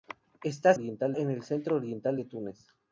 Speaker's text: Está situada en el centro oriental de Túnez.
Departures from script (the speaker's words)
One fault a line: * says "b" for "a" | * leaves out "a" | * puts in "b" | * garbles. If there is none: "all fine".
* says "oriental" for "situada"